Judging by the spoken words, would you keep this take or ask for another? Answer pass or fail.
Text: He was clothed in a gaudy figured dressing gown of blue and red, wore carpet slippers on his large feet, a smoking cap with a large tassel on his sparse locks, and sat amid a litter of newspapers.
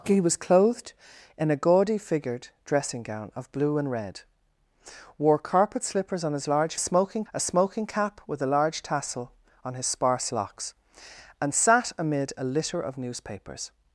fail